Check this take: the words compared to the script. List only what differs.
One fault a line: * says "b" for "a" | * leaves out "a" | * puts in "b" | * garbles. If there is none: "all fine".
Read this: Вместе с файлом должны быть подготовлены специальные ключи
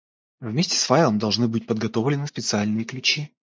all fine